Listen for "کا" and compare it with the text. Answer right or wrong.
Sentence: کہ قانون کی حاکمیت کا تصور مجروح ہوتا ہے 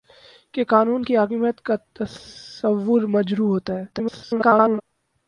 right